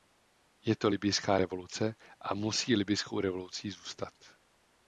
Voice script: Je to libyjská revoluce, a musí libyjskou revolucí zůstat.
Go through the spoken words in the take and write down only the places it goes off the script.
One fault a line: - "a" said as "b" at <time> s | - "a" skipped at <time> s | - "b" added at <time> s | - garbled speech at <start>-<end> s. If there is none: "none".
none